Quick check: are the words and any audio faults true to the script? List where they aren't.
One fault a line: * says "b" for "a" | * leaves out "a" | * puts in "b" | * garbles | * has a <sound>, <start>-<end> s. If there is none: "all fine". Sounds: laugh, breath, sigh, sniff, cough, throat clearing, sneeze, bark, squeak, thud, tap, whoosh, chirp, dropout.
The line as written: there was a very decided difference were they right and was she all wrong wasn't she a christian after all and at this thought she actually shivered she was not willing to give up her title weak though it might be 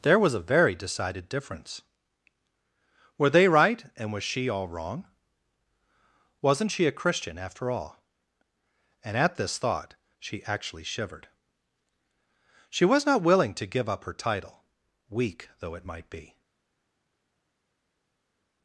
all fine